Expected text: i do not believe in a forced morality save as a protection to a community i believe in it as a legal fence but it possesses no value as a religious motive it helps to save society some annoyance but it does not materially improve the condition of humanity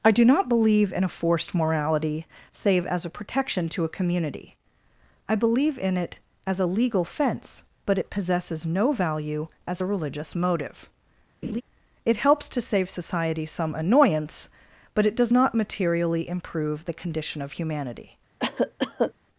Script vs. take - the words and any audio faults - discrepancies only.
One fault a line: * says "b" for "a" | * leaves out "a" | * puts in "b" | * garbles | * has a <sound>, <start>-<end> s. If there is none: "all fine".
* has a laugh, 11.4-11.6 s
* has a cough, 18.4-19.1 s